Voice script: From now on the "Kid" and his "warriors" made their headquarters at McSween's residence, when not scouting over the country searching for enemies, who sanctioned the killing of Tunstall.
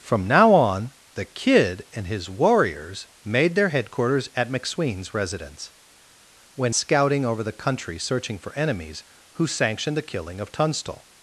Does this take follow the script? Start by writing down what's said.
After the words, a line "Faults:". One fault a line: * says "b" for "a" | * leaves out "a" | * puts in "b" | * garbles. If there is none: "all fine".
From now on the "Kid" and his "warriors" made their headquarters at McSween's residence, when scouting over the country searching for enemies, who sanctioned the killing of Tunstall.
Faults:
* leaves out "not"